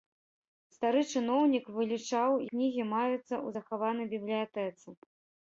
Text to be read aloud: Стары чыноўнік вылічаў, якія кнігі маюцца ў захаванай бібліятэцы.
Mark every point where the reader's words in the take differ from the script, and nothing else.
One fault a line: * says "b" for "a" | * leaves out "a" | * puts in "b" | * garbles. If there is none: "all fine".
* leaves out "якія"